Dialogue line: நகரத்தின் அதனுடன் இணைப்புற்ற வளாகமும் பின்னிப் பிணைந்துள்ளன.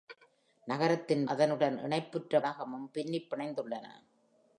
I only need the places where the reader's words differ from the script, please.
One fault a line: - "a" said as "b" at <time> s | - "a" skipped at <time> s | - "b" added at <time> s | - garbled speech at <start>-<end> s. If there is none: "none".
none